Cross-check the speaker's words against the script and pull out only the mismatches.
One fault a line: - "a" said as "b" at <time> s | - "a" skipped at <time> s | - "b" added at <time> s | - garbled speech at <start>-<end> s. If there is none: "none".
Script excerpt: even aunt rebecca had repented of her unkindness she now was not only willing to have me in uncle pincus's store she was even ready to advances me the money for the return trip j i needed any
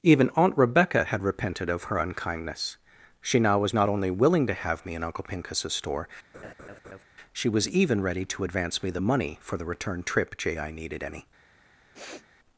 - "advances" said as "advance" at 8.4 s